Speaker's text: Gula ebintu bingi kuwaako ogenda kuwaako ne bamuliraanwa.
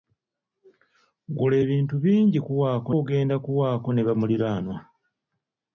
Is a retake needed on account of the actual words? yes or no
no